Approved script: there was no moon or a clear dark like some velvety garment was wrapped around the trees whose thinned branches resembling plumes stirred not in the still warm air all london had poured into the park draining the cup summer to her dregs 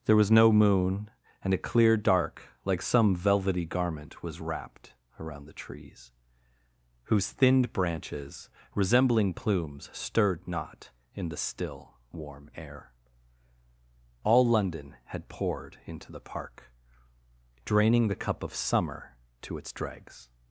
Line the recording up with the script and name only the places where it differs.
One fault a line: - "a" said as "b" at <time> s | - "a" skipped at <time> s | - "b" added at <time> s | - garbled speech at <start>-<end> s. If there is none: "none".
- "or" said as "and" at 1.4 s
- "of" added at 18.4 s
- "her" said as "its" at 19.6 s